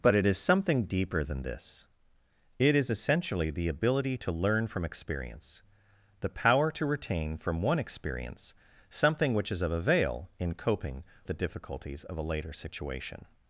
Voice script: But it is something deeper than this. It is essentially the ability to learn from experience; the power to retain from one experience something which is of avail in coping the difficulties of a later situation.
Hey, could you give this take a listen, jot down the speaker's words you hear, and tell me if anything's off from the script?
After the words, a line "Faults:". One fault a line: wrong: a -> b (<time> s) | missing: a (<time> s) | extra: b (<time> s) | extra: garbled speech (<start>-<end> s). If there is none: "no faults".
But it is something deeper than this. It is essentially the ability to learn from experience; the power to retain from one experience something which is of avail in coping the difficulties of a later situation.
Faults:
no faults